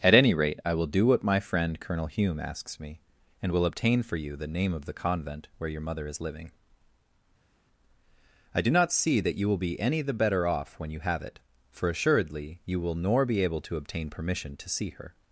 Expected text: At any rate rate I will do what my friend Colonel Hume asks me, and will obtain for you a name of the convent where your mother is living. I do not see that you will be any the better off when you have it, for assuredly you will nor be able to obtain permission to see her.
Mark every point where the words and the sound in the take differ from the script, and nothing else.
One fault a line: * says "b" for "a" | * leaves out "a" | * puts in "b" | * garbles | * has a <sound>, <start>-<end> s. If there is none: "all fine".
* leaves out "rate"
* says "the" for "a"